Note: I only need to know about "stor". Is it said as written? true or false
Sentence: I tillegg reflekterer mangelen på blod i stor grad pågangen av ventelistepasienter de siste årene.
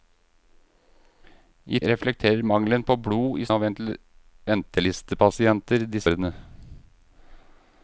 false